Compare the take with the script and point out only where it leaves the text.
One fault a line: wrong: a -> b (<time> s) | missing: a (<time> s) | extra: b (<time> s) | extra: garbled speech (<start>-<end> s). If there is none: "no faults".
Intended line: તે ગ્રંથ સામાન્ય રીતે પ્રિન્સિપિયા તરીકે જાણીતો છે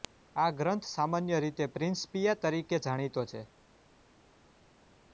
wrong: તે -> આ (0.3 s)